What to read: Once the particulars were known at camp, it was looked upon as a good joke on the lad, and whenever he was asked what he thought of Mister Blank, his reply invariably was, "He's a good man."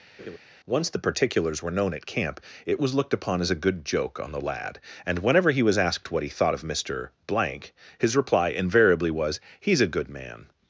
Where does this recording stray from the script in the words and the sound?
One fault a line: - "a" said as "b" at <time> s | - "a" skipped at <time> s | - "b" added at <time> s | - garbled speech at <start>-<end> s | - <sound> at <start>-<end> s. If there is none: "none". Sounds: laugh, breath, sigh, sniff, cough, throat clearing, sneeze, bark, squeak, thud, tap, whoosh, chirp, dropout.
- laugh at 0.2-0.4 s